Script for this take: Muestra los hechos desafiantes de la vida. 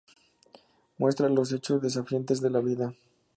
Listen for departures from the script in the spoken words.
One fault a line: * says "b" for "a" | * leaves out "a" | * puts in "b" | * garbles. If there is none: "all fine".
all fine